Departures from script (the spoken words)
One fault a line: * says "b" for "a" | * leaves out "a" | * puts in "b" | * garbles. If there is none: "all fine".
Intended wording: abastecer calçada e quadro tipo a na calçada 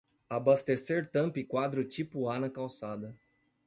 * says "tampa" for "calçada"